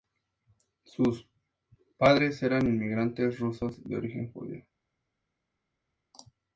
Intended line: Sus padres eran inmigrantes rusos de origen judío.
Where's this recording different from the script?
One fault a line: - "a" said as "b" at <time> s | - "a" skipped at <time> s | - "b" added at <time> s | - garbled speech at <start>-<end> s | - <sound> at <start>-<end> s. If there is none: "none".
none